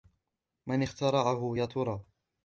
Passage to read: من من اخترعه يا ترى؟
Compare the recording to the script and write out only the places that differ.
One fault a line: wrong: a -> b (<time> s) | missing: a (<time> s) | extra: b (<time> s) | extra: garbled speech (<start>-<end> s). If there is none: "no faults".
missing: من (0.8 s)